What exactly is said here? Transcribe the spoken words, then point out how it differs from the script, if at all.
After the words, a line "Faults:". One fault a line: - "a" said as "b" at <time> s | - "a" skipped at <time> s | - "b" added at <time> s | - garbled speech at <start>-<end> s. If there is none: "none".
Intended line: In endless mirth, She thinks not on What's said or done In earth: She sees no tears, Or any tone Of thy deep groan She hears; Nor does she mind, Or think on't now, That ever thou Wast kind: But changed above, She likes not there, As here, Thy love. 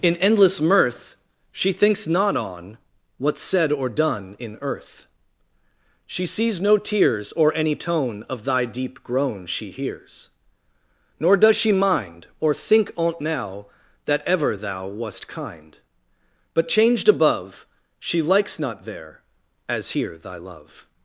In endless mirth, She thinks not on What's said or done In earth: She sees no tears, Or any tone Of thy deep groan She hears; Nor does she mind, Or think on't now, That ever thou Wast kind: But changed above, She likes not there, As here, Thy love.
Faults:
none